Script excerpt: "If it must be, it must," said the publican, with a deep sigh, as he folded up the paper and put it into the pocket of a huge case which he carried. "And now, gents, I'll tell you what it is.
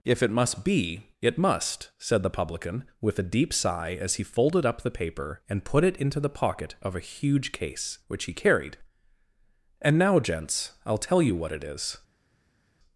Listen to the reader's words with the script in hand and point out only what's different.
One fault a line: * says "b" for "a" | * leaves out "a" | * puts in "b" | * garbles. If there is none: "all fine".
all fine